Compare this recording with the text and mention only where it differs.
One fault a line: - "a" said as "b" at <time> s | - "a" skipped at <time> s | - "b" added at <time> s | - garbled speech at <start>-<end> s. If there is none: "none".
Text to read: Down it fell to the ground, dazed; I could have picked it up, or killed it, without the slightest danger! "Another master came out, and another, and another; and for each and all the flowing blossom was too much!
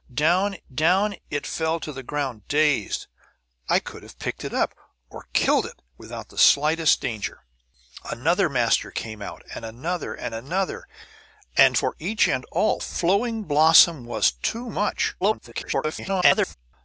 - "down" added at 0.7 s
- "the" skipped at 12.8 s
- garbled speech at 15.2-16.5 s